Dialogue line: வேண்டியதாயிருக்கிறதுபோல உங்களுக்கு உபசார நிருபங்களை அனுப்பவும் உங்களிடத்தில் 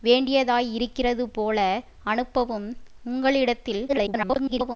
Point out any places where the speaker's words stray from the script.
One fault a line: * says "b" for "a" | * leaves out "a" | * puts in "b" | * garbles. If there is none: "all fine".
* leaves out "உங்களுக்கு உபசார நிருபங்களை"
* garbles